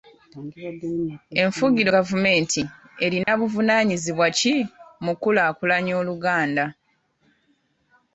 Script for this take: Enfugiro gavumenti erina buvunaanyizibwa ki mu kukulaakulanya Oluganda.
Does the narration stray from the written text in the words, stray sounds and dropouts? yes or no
yes